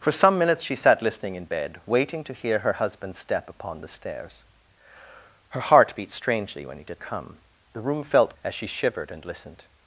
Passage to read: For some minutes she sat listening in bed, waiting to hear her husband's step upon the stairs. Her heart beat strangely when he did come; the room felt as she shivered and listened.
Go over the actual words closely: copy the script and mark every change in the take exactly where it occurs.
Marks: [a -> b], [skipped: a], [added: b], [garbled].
For some minutes she sat listening in bed, waiting to hear her husband's step upon the stairs. Her heart beat strangely when he did come; the room felt as she shivered and listened.